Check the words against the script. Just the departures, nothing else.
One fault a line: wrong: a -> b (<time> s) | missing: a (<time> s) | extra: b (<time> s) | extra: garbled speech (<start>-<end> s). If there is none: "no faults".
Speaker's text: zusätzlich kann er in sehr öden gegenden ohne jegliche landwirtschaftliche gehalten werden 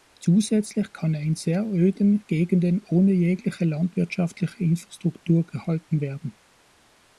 extra: infrastruktur (4.6 s)